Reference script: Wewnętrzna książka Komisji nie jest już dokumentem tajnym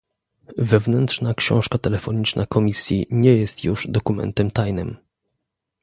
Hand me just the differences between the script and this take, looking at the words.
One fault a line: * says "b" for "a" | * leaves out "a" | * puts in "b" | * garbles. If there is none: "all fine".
* puts in "telefoniczna"